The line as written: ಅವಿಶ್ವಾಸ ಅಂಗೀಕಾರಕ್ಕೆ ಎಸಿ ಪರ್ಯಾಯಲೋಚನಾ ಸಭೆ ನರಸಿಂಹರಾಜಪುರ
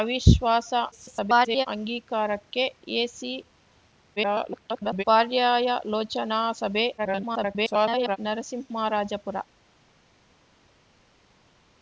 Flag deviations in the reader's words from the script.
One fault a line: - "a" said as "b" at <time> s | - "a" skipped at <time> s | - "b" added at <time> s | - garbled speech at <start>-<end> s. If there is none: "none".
- garbled speech at 0.9-1.7 s
- garbled speech at 4.2-5.0 s
- garbled speech at 7.0-8.2 s